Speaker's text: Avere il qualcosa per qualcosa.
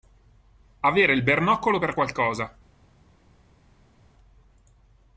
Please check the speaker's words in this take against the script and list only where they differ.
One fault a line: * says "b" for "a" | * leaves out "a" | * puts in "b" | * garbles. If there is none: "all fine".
* says "bernoccolo" for "qualcosa"